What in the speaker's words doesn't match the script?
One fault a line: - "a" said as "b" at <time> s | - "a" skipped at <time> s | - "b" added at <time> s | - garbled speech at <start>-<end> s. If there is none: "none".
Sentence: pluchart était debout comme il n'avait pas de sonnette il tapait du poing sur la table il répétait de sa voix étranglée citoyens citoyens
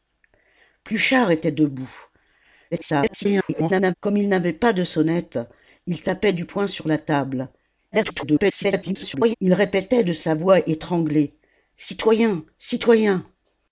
- garbled speech at 2.7-3.9 s
- garbled speech at 7.9-9.3 s